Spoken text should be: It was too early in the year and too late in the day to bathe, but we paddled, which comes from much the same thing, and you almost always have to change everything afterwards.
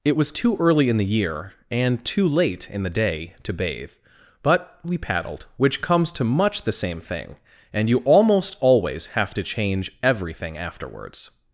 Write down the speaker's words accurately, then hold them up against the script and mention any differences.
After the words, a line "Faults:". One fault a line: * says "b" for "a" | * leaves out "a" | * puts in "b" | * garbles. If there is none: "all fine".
It was too early in the year and too late in the day to bathe, but we paddled, which comes to much the same thing, and you almost always have to change everything afterwards.
Faults:
* says "to" for "from"